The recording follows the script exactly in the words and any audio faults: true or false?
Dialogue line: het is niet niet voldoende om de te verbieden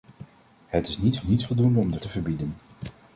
true